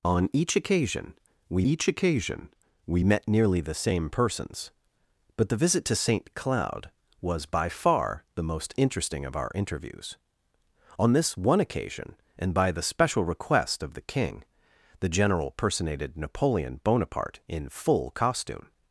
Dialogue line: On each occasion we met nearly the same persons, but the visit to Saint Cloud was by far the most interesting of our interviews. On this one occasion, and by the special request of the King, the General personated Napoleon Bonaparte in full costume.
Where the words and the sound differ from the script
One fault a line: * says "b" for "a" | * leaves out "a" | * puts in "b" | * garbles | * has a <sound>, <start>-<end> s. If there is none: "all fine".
* puts in "each occasion we"